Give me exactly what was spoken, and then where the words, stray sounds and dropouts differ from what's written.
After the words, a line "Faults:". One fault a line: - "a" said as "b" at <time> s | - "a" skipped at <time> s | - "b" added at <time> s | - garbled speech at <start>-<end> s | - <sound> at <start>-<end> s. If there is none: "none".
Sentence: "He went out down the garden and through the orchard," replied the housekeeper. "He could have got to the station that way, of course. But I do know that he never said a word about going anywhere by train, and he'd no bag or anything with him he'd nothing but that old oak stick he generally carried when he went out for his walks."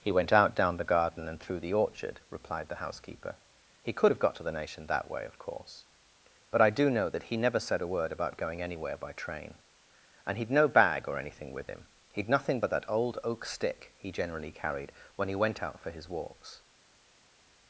"He went out down the garden and through the orchard," replied the housekeeper. "He could have got to the nation that way, of course. But I do know that he never said a word about going anywhere by train, and he'd no bag or anything with him he'd nothing but that old oak stick he generally carried when he went out for his walks."
Faults:
- "station" said as "nation" at 4.5 s